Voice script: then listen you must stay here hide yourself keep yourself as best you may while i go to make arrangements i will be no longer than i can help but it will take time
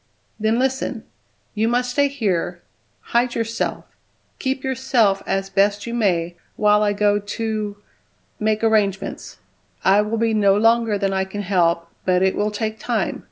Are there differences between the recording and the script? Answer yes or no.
no